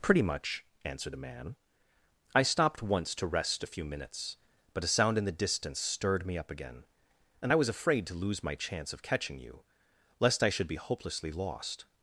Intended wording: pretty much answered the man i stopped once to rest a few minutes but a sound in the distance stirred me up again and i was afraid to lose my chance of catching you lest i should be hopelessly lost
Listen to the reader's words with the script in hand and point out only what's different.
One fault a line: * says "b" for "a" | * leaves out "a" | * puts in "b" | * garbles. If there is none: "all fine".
all fine